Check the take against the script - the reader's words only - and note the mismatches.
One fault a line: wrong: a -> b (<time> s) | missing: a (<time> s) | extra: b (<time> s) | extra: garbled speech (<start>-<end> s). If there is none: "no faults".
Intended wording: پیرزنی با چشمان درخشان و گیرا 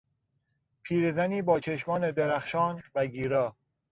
no faults